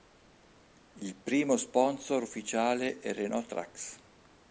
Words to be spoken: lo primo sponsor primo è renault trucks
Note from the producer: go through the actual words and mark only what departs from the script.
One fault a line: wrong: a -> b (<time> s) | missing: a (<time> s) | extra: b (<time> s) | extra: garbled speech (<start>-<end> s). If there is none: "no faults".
wrong: lo -> il (0.9 s)
wrong: primo -> ufficiale (2.2 s)